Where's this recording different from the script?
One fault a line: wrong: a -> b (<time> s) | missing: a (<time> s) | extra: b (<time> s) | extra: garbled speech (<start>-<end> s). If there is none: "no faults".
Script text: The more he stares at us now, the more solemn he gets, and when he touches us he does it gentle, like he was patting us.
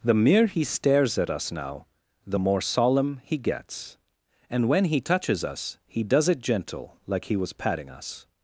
wrong: more -> mere (0.1 s)